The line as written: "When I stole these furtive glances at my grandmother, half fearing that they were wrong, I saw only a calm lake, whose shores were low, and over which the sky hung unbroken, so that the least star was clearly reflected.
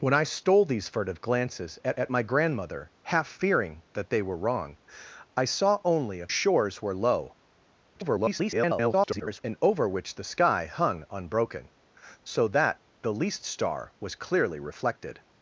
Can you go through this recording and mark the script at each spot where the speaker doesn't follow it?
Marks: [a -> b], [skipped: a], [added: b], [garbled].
"When I stole these furtive glances at [added: at] my grandmother, half fearing that they were wrong, I saw only a [skipped: calm lake, whose] shores were low, [garbled] and over which the sky hung unbroken, so that the least star was clearly reflected.